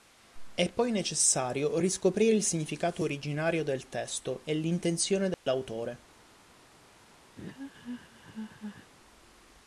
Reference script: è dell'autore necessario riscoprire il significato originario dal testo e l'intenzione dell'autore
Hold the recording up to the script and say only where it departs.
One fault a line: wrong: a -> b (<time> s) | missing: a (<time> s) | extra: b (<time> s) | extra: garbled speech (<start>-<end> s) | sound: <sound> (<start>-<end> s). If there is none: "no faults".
wrong: dell'autore -> poi (0.6 s)
wrong: dal -> del (3.6 s)
sound: dropout (5.3-5.5 s)
sound: laugh (7.4-8.9 s)